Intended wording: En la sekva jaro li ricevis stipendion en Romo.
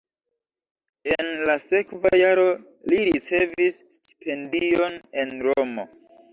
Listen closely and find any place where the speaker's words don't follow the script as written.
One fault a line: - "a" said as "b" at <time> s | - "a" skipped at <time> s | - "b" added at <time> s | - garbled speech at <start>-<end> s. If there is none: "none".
none